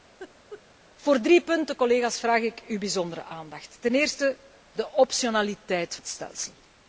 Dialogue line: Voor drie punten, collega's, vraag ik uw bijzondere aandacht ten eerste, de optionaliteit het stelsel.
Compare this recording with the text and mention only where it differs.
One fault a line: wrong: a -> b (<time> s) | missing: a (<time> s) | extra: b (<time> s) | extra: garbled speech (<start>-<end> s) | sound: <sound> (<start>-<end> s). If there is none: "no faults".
sound: laugh (0.2-0.6 s)